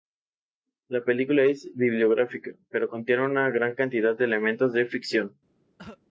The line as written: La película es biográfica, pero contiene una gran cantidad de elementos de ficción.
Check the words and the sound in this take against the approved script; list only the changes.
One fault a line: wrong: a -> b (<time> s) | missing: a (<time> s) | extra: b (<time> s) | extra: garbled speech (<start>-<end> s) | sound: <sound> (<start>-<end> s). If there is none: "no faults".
sound: cough (5.8-6.0 s)